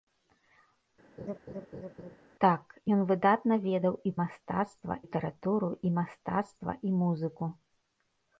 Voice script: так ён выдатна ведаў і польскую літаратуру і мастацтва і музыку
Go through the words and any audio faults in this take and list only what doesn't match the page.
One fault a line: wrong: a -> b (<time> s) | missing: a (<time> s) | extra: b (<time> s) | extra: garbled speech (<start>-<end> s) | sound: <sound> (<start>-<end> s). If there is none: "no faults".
sound: laugh (1.2-2.2 s)
wrong: польскую -> мастацтва (4.2 s)